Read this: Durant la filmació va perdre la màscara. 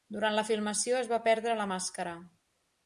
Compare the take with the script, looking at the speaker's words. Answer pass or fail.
fail